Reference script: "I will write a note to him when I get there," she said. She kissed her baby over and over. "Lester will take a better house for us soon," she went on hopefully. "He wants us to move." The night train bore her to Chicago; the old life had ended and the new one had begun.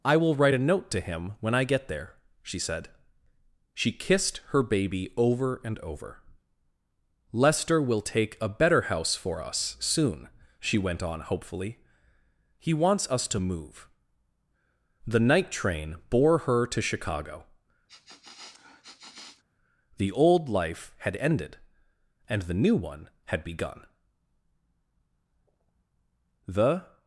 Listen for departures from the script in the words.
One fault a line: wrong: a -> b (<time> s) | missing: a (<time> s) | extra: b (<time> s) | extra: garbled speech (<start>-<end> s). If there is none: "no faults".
extra: The (26.5 s)